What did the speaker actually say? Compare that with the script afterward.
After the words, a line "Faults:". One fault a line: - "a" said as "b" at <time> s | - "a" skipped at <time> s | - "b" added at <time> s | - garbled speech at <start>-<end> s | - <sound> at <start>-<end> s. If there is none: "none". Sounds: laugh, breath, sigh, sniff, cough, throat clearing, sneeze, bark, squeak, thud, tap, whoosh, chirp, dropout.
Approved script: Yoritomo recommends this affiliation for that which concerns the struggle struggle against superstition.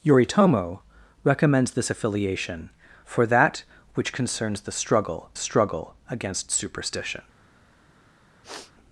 Yoritomo recommends this affiliation for that which concerns the struggle struggle against superstition.
Faults:
- sniff at 8.4-8.7 s